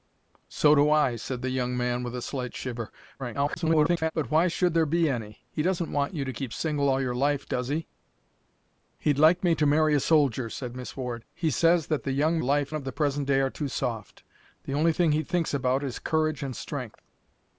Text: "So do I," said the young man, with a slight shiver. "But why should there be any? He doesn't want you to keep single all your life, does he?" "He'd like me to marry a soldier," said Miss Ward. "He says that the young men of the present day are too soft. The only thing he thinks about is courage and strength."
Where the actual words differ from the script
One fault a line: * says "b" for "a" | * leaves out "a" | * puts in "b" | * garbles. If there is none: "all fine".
* garbles
* says "life" for "men"